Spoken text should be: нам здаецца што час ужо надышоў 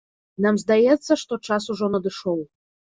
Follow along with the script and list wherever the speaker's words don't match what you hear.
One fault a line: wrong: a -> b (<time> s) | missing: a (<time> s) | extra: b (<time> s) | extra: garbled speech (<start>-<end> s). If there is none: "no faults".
no faults